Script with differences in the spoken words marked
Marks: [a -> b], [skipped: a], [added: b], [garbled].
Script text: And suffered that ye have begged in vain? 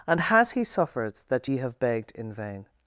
And [added: has he] suffered that ye have begged in vain?